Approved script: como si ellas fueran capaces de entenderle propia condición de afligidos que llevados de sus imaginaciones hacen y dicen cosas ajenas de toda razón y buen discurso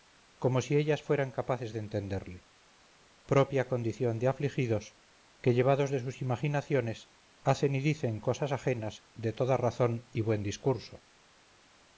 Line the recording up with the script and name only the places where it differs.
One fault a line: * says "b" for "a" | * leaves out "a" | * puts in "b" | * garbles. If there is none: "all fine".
all fine